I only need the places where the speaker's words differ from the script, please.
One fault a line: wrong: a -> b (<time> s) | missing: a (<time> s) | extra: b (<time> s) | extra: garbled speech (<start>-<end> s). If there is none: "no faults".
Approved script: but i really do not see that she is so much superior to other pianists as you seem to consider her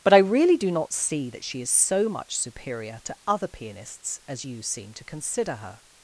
no faults